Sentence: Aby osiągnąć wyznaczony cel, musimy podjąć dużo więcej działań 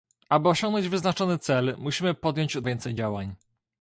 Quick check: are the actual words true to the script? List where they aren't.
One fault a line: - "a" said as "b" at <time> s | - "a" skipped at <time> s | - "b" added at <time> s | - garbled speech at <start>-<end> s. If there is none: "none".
- "dużo" skipped at 2.6 s